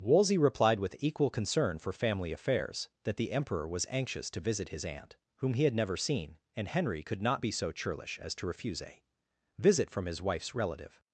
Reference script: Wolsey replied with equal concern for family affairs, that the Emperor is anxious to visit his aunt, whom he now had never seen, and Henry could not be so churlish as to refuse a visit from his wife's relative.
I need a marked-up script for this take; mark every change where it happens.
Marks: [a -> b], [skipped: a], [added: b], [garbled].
Wolsey replied with equal concern for family affairs, that the Emperor [is -> was] anxious to visit his aunt, whom he [skipped: now] had never seen, and Henry could not be so churlish as to refuse a visit from his wife's relative.